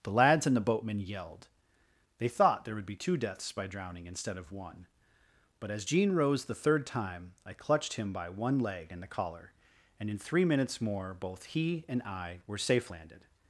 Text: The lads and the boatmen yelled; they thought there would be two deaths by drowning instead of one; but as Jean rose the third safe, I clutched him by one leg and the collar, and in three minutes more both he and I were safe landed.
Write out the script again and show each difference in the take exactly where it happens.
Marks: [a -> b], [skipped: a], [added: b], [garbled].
The lads and the boatmen yelled; they thought there would be two deaths by drowning instead of one; but as Jean rose the third [safe, -> time] I clutched him by one leg and the collar, and in three minutes more both he and I were safe landed.